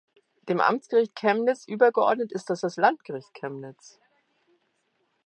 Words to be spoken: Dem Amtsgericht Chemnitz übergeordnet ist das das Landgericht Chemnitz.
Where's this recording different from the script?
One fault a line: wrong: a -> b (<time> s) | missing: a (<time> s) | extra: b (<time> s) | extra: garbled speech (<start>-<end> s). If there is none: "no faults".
no faults